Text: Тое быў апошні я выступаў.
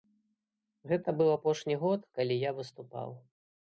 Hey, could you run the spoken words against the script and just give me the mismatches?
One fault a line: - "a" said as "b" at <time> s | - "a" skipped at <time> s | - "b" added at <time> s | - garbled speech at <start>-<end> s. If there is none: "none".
- "Тое" said as "Гэта" at 0.9 s
- "год калі" added at 1.8 s